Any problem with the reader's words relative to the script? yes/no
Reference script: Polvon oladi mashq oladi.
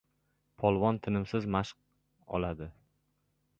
yes